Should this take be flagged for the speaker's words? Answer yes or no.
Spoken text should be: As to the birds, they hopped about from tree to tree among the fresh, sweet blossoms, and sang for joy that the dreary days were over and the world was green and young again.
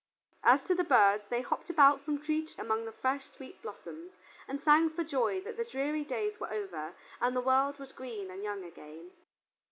yes